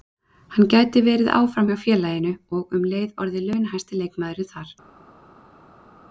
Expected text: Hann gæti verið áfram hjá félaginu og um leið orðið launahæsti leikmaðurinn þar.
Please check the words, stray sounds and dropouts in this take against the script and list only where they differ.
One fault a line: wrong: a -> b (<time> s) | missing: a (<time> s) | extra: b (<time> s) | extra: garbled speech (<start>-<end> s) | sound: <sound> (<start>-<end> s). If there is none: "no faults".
no faults